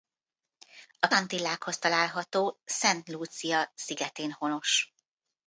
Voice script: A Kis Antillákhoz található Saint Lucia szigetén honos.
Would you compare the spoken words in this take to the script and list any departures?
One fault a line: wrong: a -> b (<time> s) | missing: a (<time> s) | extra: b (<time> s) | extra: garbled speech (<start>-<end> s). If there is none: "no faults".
missing: Kis (1.1 s)